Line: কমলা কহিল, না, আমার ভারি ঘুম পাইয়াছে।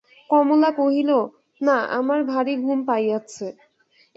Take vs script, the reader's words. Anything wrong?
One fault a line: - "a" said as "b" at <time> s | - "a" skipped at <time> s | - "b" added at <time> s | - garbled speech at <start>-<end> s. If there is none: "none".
none